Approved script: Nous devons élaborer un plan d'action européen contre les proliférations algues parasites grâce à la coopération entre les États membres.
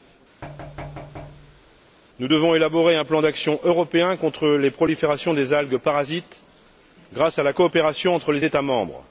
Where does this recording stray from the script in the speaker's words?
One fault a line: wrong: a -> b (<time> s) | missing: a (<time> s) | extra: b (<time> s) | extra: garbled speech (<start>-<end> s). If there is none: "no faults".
extra: des (5.3 s)